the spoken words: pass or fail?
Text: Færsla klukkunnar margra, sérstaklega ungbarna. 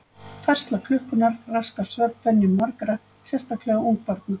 fail